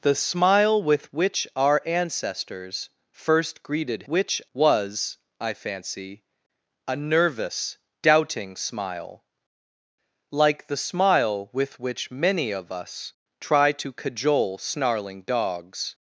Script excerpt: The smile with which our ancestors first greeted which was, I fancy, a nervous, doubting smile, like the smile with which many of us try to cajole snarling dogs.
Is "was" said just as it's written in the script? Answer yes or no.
yes